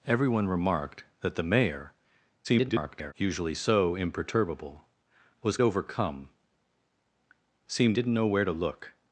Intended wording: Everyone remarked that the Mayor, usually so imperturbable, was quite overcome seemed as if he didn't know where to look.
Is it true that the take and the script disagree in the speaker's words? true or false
true